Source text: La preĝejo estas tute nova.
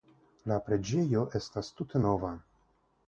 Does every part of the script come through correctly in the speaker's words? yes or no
yes